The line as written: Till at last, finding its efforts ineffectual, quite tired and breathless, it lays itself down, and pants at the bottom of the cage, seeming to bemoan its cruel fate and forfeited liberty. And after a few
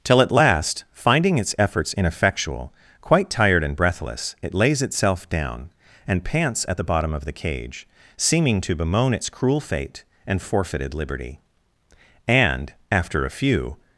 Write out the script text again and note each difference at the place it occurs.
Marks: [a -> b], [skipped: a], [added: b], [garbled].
Till at last, finding its efforts ineffectual, quite tired and breathless, it lays itself down, and pants at the bottom of the cage, seeming to bemoan its cruel fate and forfeited liberty. And after a few